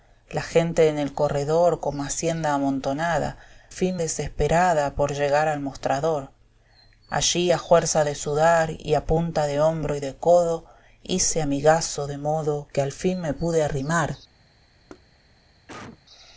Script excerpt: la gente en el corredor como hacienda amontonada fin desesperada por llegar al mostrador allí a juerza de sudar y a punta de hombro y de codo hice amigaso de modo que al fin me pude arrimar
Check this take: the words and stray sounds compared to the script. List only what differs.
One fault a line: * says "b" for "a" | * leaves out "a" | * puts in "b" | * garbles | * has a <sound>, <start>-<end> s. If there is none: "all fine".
* has a thud, 14.9-15.1 s
* has a cough, 15.7-16.0 s